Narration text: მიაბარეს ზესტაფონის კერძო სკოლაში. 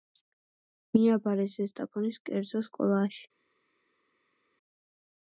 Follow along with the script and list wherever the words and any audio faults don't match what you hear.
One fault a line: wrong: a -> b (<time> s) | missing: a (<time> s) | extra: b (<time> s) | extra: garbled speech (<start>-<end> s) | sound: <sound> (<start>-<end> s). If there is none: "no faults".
no faults